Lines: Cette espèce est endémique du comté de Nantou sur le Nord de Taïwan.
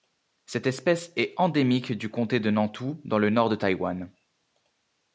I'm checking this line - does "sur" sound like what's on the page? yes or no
no